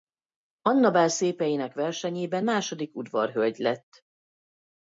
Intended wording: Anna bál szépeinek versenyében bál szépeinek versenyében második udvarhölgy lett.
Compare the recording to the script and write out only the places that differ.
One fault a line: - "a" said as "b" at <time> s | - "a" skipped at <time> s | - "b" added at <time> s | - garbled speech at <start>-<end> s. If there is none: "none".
- "bál szépeinek versenyében" skipped at 2.5 s